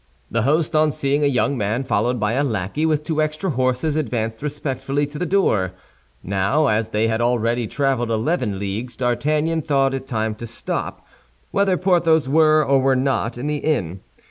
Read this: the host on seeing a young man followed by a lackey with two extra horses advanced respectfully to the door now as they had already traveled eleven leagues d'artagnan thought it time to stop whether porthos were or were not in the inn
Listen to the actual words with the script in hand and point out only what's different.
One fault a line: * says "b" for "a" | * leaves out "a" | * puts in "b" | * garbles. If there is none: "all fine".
all fine